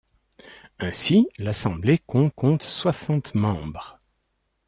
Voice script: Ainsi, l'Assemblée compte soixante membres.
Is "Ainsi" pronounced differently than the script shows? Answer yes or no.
no